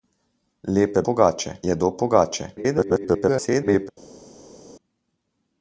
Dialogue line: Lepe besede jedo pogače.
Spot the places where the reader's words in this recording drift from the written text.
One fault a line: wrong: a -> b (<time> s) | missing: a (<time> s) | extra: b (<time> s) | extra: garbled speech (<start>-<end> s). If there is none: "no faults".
wrong: besede -> pogače (1.1 s)
extra: garbled speech (2.6-3.9 s)